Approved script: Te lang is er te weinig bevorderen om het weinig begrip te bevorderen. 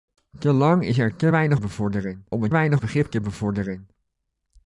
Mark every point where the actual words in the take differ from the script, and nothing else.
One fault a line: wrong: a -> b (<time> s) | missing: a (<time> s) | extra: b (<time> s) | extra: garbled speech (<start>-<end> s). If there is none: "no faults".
no faults